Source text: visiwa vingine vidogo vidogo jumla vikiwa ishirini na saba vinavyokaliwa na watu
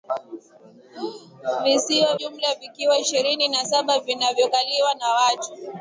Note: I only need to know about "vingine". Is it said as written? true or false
false